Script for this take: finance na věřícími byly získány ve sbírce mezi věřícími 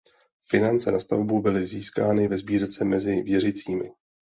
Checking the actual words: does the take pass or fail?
fail